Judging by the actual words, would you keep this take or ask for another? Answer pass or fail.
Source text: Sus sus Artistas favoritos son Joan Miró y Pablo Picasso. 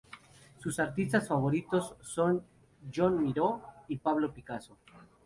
fail